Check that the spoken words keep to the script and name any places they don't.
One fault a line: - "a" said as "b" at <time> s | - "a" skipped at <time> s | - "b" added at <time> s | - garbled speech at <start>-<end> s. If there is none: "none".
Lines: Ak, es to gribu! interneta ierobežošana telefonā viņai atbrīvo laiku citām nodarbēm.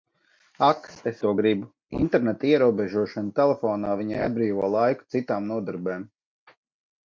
none